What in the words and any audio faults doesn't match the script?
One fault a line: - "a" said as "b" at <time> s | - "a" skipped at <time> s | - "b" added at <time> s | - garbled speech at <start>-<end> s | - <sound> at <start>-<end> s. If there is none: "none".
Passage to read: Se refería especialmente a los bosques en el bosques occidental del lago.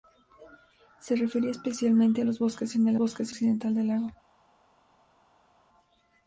none